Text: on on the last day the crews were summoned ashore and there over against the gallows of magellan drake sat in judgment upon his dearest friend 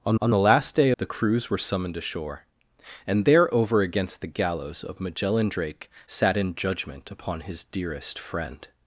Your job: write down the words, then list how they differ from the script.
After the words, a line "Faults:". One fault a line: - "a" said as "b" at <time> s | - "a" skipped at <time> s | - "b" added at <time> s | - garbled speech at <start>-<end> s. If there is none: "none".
on on the last day the crews were summoned ashore and there over against the gallows of magellan drake sat in judgment upon his dearest friend
Faults:
none